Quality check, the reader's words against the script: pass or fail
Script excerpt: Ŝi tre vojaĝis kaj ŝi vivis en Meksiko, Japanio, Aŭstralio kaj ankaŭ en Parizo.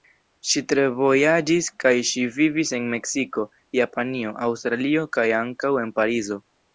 pass